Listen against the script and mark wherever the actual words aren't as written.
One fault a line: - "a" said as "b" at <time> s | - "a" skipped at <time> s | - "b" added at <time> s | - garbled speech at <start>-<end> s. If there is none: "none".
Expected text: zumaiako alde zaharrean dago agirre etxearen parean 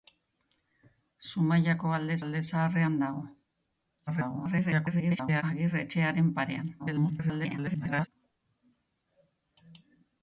- "alde" added at 2.2 s
- garbled speech at 4.1-5.4 s
- garbled speech at 6.8-8.1 s